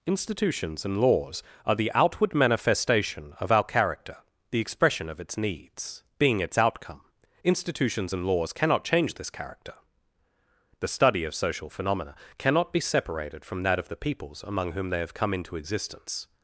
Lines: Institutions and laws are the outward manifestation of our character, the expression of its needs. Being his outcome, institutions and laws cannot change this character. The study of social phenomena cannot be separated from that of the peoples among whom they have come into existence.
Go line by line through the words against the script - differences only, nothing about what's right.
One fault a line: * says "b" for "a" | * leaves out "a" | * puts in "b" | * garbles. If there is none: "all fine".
* says "its" for "his"